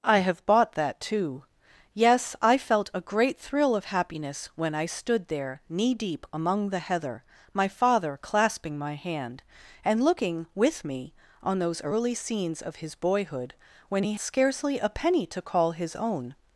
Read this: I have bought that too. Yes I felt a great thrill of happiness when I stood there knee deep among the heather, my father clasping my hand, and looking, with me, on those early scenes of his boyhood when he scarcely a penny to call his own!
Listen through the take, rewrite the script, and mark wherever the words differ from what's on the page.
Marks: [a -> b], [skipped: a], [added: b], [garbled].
I have bought that too. Yes I felt a great thrill of happiness when I stood there knee deep among the heather, my father clasping my hand, and looking, with me, on those early scenes of his boyhood when he scarcely a penny to call his own!